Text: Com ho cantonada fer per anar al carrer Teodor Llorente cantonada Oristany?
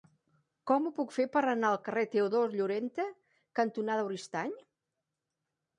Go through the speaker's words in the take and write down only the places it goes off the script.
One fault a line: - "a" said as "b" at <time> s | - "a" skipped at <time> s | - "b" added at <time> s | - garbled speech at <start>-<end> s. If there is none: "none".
- "cantonada" said as "puc" at 1.0 s